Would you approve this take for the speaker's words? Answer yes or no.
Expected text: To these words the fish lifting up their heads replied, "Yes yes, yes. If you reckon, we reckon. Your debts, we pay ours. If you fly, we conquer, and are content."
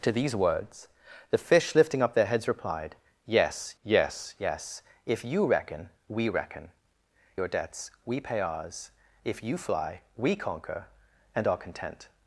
yes